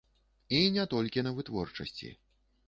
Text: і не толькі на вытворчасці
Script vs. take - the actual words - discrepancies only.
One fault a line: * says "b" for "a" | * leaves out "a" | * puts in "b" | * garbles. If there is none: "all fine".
all fine